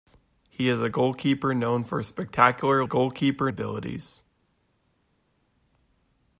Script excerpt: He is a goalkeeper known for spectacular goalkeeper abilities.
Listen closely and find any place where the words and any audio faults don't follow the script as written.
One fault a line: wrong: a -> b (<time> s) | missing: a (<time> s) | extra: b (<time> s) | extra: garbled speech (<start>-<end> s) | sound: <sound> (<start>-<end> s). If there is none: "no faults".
no faults